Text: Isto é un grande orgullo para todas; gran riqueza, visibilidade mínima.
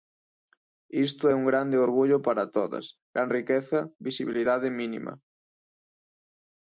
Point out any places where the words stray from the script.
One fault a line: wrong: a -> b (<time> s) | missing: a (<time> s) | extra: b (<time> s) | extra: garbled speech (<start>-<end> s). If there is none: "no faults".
no faults